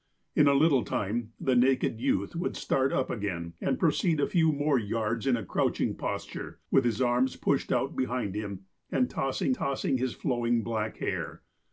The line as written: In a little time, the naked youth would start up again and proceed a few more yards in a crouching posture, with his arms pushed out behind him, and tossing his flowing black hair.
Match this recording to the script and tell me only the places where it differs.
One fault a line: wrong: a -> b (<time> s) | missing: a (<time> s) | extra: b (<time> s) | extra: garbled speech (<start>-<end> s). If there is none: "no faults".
extra: tossing (9.5 s)